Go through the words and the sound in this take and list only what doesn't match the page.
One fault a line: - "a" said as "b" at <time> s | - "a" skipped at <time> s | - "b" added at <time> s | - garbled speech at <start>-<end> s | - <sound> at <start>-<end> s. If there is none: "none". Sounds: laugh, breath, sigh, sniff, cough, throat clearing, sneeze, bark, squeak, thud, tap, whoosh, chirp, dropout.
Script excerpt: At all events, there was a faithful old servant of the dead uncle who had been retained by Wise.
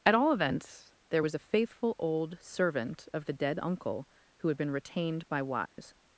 - dropout at 5.7-5.8 s